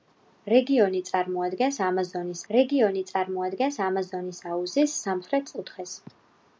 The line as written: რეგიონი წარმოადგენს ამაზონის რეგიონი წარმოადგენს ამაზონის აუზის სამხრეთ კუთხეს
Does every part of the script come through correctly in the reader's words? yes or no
yes